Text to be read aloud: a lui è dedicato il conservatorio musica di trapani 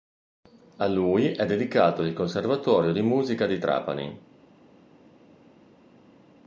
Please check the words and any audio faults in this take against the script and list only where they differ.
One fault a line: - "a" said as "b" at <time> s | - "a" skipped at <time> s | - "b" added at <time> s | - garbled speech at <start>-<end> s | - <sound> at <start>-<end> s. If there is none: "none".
- "di" added at 2.9 s